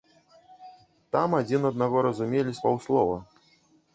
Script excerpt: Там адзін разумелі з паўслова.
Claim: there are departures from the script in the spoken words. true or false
true